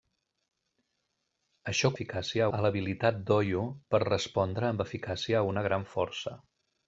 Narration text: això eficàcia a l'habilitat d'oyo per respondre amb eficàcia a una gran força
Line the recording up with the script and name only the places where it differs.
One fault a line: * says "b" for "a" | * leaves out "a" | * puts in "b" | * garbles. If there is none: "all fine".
all fine